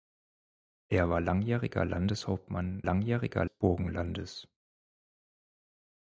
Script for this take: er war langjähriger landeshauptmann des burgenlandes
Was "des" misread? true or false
true